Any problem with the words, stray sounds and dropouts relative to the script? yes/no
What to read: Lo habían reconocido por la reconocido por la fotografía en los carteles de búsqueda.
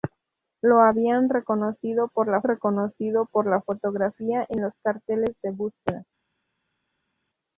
no